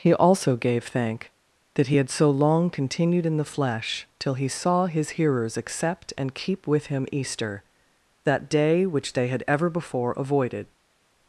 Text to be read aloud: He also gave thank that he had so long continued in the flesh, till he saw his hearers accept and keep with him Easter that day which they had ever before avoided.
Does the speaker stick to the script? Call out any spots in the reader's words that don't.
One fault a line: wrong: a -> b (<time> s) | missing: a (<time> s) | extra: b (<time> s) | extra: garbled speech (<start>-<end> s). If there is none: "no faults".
no faults